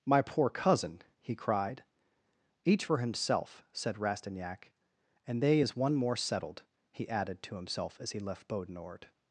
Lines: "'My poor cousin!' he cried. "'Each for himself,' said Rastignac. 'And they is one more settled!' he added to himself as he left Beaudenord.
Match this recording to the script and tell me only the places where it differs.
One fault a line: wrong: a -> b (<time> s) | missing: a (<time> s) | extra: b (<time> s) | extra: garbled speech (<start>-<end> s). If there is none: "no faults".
no faults